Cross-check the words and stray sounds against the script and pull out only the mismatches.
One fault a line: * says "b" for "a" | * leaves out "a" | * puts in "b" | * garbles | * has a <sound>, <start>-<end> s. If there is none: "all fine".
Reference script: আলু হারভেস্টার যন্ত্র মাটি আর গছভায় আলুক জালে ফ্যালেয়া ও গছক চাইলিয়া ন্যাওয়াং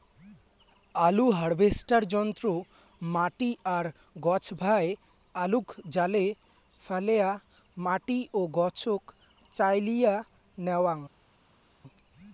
* puts in "মাটি"